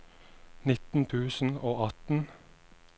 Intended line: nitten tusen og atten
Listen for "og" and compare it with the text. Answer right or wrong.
right